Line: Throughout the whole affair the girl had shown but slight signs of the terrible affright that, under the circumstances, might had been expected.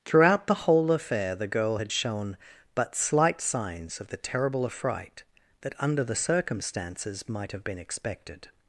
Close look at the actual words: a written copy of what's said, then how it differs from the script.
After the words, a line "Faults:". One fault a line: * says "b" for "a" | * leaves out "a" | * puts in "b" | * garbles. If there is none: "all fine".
Throughout the whole affair the girl had shown but slight signs of the terrible affright that, under the circumstances, might have been expected.
Faults:
* says "have" for "had"